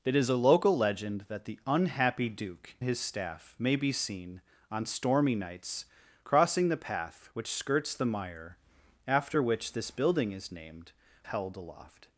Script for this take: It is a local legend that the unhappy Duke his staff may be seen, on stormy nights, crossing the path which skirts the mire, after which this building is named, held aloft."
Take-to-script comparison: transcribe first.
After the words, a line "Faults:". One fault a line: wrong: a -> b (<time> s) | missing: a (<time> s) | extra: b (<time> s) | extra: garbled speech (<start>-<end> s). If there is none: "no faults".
It is a local legend that the unhappy Duke his staff may be seen, on stormy nights, crossing the path which skirts the mire, after which this building is named, held aloft."
Faults:
no faults